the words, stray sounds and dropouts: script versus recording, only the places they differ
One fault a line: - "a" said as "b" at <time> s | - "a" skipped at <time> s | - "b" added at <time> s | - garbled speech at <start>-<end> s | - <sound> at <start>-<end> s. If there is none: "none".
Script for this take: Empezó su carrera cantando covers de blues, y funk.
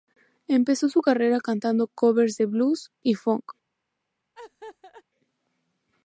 - laugh at 4.3-5.0 s